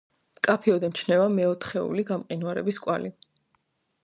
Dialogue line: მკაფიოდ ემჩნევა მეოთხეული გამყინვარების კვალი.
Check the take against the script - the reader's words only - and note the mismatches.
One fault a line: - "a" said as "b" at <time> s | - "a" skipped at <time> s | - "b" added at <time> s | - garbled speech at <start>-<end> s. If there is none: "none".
none